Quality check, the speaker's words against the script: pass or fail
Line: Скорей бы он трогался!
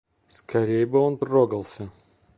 pass